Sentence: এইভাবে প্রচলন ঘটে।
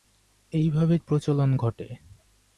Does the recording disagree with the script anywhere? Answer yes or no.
no